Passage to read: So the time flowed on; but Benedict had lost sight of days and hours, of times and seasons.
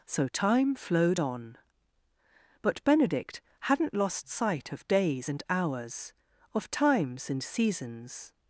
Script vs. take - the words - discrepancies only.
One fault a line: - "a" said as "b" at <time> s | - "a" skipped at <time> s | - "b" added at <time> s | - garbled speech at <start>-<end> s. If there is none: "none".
- "the" skipped at 0.3 s
- "had" said as "hadn't" at 3.6 s